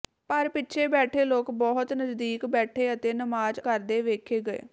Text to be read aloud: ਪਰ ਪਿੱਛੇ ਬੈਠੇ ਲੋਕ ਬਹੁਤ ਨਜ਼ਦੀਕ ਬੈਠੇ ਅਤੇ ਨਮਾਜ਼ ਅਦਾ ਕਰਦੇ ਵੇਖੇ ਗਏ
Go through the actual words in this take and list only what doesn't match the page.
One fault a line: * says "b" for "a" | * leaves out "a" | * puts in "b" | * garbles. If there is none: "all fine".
* leaves out "ਅਦਾ"